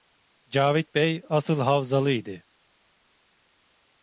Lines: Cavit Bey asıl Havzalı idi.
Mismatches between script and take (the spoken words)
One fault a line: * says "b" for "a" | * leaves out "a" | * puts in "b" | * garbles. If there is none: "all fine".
all fine